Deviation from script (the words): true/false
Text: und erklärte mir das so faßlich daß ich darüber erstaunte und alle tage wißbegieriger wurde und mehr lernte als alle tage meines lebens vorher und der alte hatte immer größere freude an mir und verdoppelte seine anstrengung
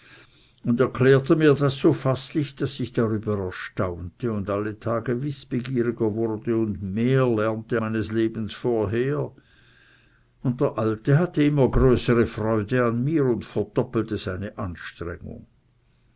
true